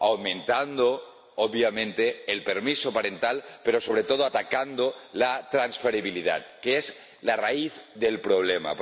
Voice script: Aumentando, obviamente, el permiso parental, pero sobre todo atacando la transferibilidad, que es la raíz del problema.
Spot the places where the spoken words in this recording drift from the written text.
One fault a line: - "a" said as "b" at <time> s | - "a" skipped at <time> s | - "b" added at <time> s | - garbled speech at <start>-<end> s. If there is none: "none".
none